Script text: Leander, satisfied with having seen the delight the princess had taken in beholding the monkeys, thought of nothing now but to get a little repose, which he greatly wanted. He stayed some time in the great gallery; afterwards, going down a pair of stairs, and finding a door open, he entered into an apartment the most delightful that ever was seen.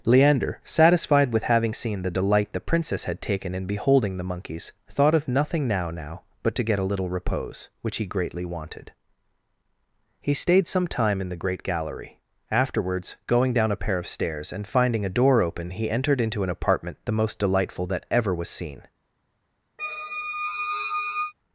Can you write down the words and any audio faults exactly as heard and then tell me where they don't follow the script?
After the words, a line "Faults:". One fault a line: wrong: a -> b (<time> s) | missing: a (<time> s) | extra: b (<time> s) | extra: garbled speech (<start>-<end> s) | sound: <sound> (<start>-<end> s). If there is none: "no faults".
Leander, satisfied with having seen the delight the princess had taken in beholding the monkeys, thought of nothing now now but to get a little repose, which he greatly wanted. He stayed some time in the great gallery; afterwards, going down a pair of stairs, and finding a door open, he entered into an apartment the most delightful that ever was seen.
Faults:
extra: now (5.9 s)
sound: squeak (19.8-21.3 s)